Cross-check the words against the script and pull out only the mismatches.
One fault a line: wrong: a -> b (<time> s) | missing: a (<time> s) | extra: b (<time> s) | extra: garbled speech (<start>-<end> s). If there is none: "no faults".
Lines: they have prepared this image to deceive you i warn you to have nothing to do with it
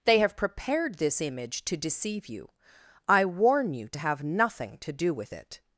no faults